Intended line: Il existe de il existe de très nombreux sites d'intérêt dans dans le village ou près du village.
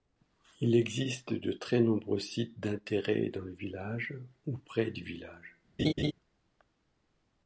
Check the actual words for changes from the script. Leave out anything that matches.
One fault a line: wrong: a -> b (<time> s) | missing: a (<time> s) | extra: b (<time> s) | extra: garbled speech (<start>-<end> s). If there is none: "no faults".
missing: il existe de (1.5 s)
missing: dans (3.4 s)